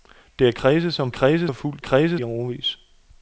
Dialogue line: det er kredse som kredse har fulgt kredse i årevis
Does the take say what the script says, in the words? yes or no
yes